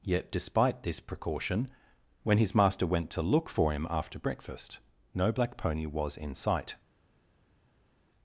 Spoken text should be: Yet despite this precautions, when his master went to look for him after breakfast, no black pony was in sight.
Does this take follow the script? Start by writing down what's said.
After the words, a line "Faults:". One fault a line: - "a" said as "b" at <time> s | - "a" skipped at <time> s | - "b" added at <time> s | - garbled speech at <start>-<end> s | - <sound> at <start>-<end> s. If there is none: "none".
Yet despite this precaution, when his master went to look for him after breakfast, no black pony was in sight.
Faults:
- "precautions" said as "precaution" at 1.0 s